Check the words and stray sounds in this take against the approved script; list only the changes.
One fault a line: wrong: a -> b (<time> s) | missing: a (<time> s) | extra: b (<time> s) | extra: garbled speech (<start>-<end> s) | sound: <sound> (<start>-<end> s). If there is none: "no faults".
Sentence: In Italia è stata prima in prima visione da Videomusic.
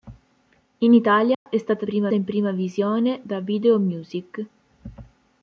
sound: dropout (1.3-1.5 s)